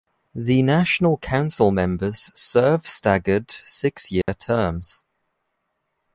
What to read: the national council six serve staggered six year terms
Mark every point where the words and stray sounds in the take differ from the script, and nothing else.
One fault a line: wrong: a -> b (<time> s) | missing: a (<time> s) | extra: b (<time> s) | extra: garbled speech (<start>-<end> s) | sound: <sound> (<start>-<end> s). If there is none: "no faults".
wrong: six -> members (1.7 s)
sound: dropout (4.2-4.3 s)